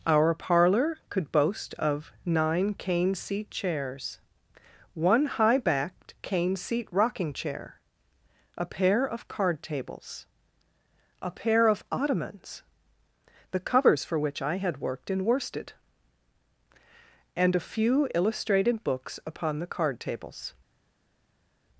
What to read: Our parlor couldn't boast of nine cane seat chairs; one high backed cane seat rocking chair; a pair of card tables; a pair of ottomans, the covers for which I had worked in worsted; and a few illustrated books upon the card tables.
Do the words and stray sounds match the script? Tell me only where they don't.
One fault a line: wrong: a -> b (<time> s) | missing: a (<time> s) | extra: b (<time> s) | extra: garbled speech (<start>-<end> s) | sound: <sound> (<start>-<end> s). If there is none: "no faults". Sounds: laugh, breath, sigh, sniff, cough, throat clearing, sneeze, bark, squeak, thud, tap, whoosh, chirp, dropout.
wrong: couldn't -> could (1.1 s)